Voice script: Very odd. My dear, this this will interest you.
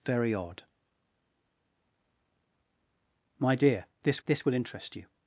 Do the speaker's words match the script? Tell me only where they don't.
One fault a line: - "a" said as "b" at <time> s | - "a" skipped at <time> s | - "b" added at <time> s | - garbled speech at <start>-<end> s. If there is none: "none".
none